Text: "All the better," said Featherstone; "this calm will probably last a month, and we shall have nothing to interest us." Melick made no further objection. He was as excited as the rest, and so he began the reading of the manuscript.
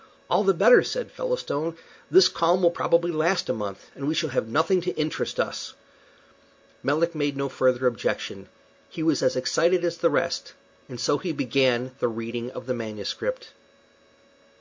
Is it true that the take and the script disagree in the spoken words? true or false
false